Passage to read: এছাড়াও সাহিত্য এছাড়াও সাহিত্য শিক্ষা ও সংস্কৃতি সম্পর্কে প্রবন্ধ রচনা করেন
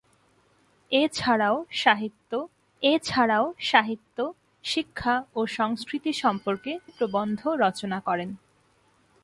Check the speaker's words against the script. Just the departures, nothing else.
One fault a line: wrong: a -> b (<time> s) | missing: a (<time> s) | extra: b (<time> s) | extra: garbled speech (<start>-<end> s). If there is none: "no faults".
no faults